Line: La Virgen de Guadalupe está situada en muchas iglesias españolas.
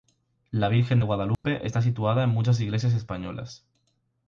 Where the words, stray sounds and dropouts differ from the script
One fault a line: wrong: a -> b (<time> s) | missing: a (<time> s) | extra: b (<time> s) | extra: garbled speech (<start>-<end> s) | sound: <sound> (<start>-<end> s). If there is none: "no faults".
sound: dropout (1.3-1.4 s)